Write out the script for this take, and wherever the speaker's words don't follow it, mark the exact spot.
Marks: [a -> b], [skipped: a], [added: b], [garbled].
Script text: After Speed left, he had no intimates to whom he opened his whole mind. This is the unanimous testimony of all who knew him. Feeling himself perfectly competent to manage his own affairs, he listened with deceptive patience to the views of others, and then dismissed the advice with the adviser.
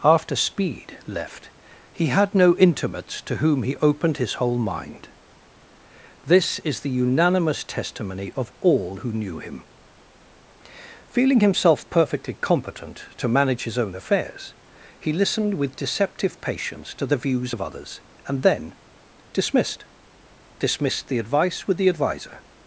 After Speed left, he had no intimates to whom he opened his whole mind. This is the unanimous testimony of all who knew him. Feeling himself perfectly competent to manage his own affairs, he listened with deceptive patience to the views of others, and then dismissed [added: dismissed] the advice with the adviser.